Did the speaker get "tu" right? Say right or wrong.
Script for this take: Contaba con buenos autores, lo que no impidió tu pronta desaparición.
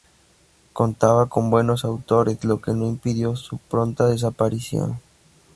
wrong